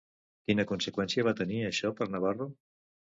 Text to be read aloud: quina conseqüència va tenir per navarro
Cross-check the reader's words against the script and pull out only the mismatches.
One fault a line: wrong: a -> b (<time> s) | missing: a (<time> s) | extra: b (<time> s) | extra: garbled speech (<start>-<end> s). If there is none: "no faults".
extra: això (1.7 s)